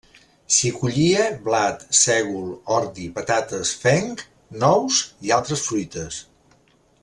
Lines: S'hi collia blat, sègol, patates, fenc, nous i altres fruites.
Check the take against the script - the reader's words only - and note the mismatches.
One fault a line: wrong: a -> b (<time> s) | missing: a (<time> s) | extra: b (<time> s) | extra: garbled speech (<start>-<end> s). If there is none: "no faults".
extra: ordi (2.8 s)